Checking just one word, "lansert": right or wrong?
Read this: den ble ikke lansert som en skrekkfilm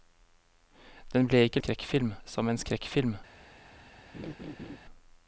wrong